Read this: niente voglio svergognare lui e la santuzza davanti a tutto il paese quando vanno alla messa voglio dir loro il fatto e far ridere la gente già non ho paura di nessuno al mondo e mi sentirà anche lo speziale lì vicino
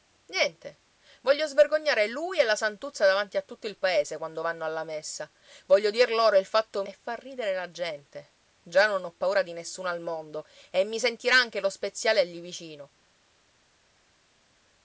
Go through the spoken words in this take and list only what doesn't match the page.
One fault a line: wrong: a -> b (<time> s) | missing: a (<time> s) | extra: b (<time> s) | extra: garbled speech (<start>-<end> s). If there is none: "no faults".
no faults